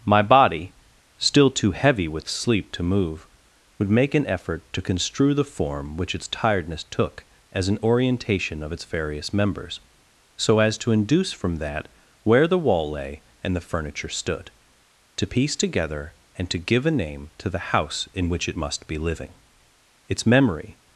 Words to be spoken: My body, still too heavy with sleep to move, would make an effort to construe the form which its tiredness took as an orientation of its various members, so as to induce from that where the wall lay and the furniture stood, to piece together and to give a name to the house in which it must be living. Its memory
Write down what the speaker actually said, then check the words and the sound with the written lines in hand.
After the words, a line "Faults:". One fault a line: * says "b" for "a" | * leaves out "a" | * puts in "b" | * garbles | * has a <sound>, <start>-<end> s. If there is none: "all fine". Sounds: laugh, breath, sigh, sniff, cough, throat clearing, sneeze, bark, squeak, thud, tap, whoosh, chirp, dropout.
My body, still too heavy with sleep to move, would make an effort to construe the form which its tiredness took as an orientation of its various members, so as to induce from that where the wall lay and the furniture stood, to piece together and to give a name to the house in which it must be living. Its memory
Faults:
all fine